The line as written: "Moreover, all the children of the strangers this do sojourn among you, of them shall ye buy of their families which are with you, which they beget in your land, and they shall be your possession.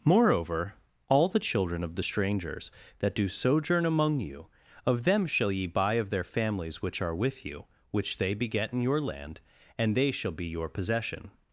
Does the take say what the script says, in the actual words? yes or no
no